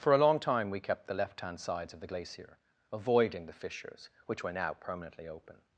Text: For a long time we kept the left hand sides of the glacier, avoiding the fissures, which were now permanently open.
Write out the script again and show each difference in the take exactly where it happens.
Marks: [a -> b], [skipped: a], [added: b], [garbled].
For a long time we kept the left hand sides of the glacier, avoiding the fissures, which were now permanently open.